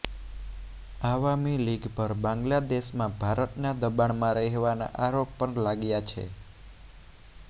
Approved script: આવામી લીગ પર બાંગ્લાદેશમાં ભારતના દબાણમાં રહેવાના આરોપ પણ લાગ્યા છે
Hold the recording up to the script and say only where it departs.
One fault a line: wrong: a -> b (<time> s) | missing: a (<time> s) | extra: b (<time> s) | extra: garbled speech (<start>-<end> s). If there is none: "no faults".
no faults